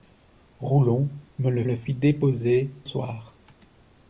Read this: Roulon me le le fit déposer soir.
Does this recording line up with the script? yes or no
yes